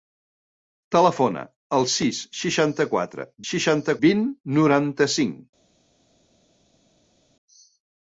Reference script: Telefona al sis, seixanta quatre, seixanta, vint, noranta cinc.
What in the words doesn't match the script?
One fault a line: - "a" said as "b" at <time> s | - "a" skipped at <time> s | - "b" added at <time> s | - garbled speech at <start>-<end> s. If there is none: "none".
none